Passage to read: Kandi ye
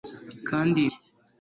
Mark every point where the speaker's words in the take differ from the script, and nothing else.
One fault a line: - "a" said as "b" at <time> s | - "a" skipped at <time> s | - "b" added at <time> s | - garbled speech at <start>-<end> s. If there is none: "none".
none